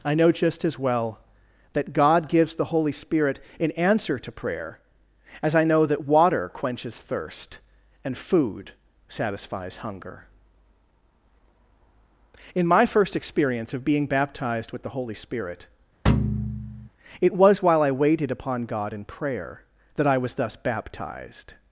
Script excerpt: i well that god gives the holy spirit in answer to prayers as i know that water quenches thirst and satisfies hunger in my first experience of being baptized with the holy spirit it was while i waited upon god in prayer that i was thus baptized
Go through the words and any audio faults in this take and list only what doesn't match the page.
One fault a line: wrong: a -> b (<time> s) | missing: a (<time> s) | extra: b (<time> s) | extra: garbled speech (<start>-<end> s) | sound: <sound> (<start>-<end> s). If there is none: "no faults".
extra: know just as (0.1 s)
wrong: prayers -> prayer (4.3 s)
extra: food (8.2 s)
sound: thud (16.1-16.9 s)